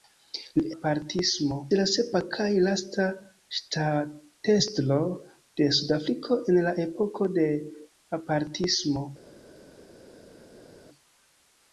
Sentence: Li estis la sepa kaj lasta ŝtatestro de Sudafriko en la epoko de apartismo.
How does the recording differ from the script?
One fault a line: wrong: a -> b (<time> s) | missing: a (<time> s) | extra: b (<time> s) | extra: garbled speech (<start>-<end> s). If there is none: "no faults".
wrong: estis -> apartismo (0.8 s)